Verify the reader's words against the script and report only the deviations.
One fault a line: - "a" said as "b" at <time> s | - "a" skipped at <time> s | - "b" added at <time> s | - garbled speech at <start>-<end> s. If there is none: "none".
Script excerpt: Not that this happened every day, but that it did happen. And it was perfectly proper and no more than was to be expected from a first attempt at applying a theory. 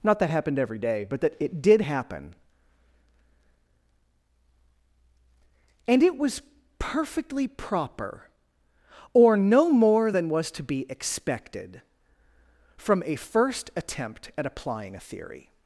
- "this" skipped at 0.3 s
- "and" said as "or" at 9.1 s